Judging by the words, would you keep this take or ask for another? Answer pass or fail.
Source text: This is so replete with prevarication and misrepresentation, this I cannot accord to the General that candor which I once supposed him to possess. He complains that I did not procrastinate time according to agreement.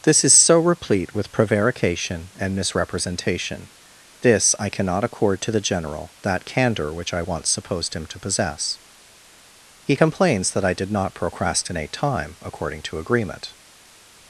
pass